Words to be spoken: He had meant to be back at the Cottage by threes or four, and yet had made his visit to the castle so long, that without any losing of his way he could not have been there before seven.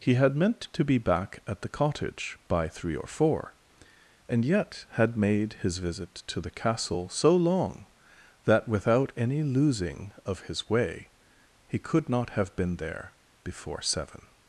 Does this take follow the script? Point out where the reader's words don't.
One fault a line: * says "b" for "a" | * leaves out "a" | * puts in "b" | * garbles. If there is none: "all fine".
* says "three" for "threes"